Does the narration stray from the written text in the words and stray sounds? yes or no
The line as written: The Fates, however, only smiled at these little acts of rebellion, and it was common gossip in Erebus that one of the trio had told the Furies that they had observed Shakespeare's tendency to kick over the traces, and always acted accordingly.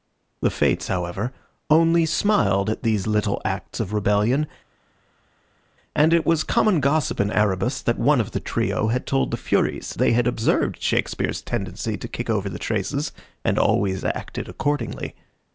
yes